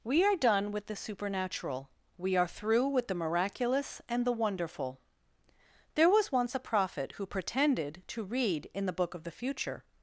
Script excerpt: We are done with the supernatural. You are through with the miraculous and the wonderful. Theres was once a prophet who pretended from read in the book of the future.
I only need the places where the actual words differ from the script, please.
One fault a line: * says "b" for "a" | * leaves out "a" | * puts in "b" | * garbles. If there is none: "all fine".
* says "We" for "You"
* says "There" for "Theres"
* says "to" for "from"